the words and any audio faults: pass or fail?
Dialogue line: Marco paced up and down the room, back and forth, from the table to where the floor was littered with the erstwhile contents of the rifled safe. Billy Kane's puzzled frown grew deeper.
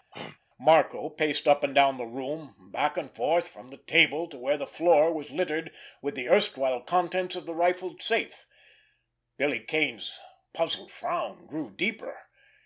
fail